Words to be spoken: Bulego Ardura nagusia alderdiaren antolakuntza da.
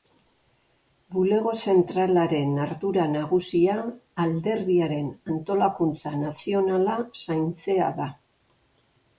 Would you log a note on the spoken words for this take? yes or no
yes